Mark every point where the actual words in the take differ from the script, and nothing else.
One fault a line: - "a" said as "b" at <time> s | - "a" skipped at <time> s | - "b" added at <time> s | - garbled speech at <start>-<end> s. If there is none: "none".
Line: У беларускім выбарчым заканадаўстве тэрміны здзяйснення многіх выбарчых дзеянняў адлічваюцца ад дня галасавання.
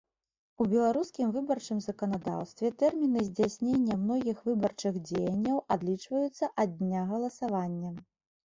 none